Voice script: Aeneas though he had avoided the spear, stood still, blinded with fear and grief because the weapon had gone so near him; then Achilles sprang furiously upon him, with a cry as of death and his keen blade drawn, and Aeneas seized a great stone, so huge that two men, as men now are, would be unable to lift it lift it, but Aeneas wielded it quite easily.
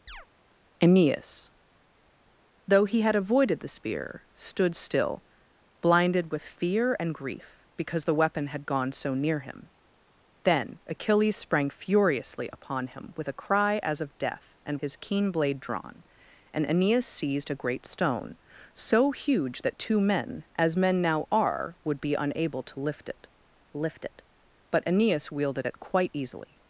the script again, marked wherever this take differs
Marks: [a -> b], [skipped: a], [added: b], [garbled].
Aeneas though he had avoided the spear, stood still, blinded with fear and grief because the weapon had gone so near him; then Achilles sprang furiously upon him, with a cry as of death and his keen blade drawn, and Aeneas seized a great stone, so huge that two men, as men now are, would be unable to lift it lift it, but Aeneas wielded it quite easily.